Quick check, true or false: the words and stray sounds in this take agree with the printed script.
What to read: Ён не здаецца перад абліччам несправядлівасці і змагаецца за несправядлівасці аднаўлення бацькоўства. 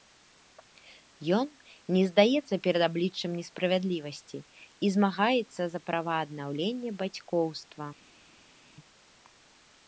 false